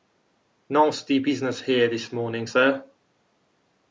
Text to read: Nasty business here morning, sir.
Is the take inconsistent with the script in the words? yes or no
yes